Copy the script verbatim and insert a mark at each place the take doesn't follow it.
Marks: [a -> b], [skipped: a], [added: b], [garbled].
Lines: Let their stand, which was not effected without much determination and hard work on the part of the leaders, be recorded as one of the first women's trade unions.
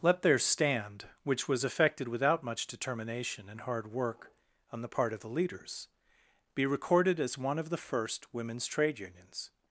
Let their stand, which was [skipped: not] effected without much determination and hard work on the part of the leaders, be recorded as one of the first women's trade unions.